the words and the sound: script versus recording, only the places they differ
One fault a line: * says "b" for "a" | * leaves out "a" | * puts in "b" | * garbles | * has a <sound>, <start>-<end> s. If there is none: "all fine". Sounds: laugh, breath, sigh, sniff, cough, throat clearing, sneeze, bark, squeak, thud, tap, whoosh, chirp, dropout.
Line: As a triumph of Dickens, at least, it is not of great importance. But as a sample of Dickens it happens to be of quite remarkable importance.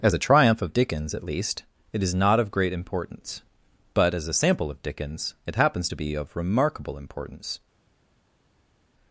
* leaves out "quite"